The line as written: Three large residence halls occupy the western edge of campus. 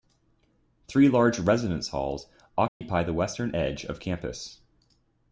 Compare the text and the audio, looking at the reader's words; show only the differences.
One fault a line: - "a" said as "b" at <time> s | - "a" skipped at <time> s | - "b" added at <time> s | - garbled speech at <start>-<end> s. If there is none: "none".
none